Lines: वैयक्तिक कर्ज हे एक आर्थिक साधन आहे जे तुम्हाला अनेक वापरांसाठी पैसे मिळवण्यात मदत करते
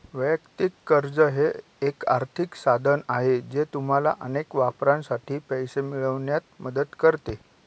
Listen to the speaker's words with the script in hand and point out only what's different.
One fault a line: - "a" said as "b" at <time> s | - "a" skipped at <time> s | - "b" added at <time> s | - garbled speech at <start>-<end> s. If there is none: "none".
none